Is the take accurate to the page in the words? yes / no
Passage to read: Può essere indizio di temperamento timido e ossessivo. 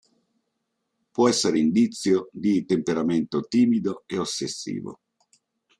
yes